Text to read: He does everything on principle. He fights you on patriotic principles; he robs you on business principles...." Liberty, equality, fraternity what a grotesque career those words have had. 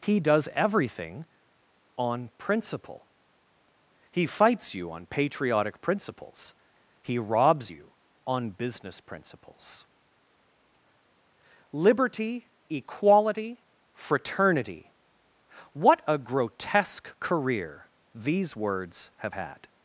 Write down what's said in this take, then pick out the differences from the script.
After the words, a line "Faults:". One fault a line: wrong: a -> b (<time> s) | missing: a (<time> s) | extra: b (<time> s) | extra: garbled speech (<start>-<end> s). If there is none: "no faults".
He does everything on principle. He fights you on patriotic principles; he robs you on business principles...." Liberty, equality, fraternity what a grotesque career these words have had.
Faults:
wrong: those -> these (18.1 s)